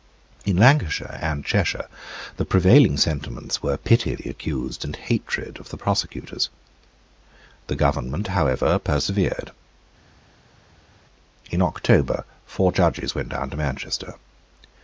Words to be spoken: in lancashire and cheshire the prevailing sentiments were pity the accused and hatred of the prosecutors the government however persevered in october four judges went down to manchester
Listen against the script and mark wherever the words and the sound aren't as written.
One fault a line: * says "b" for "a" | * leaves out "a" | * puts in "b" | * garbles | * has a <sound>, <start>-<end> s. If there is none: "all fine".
all fine